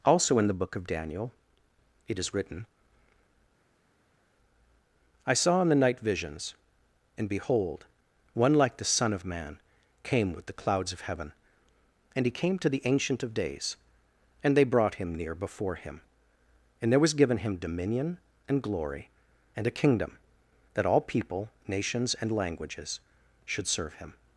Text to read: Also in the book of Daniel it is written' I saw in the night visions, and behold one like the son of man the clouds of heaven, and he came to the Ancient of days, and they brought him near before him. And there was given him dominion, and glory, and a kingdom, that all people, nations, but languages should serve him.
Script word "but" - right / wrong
wrong